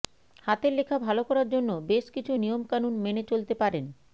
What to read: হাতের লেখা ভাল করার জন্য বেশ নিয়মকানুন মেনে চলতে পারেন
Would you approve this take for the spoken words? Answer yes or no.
no